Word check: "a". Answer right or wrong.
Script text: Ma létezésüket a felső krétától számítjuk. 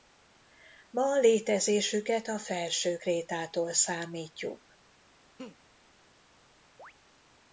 right